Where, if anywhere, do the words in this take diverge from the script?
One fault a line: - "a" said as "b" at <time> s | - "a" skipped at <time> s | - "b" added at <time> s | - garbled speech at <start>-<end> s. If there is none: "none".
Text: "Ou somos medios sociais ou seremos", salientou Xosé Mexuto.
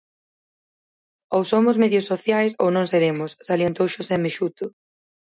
- "non" added at 2.7 s